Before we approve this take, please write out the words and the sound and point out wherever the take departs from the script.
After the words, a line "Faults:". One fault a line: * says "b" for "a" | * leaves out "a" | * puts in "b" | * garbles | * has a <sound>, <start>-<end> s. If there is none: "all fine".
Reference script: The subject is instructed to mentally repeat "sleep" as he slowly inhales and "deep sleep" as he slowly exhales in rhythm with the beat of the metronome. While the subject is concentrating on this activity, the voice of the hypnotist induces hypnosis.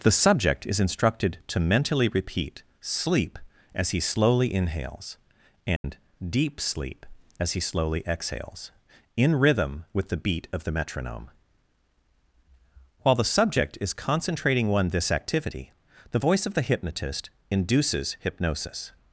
The subject is instructed to mentally repeat "sleep" as he slowly inhales and "deep sleep" as he slowly exhales in rhythm with the beat of the metronome. While the subject is concentrating one this activity, the voice of the hypnotist induces hypnosis.
Faults:
* has a dropout, 5.8-5.8 s
* says "one" for "on"